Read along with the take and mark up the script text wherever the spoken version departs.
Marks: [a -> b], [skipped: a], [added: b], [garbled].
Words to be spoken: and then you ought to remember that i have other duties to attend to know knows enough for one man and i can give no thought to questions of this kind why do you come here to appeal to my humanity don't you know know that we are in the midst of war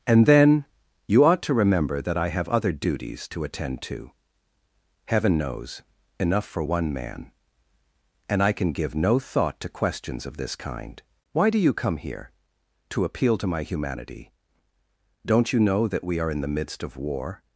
and then you ought to remember that i have other duties to attend to [know -> heaven] knows enough for one man and i can give no thought to questions of this kind why do you come here to appeal to my humanity don't you know [skipped: know] that we are in the midst of war